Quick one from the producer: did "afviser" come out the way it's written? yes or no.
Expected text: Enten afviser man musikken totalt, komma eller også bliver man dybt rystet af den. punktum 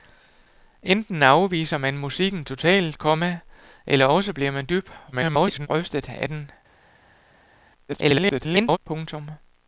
yes